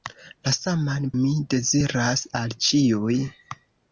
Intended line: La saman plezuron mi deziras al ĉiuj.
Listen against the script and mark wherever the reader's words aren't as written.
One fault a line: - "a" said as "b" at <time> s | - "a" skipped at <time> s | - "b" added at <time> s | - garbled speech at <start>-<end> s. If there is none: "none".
- "plezuron" skipped at 1.0 s